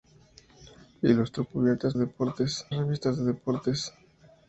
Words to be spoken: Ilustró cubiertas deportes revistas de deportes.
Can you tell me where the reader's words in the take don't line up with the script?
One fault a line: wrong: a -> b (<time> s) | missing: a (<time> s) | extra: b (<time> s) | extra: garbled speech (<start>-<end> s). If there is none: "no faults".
no faults